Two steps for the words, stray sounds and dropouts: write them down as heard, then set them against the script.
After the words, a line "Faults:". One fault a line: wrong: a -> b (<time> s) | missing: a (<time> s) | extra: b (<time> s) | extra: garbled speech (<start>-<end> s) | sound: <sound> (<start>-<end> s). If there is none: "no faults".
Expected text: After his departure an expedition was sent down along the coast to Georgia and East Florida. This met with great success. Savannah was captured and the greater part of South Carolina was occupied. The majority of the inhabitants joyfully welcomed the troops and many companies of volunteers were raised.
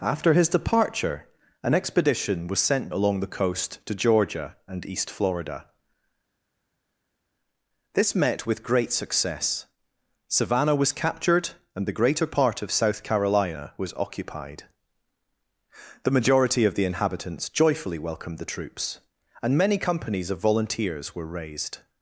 After his departure an expedition was sent along the coast to Georgia and East Florida. This met with great success. Savannah was captured and the greater part of South Carolina was occupied. The majority of the inhabitants joyfully welcomed the troops and many companies of volunteers were raised.
Faults:
missing: down (2.9 s)